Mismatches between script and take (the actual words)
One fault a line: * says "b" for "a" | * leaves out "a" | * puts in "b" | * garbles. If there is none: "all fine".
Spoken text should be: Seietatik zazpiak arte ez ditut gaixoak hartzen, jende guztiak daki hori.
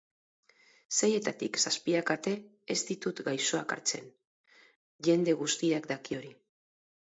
all fine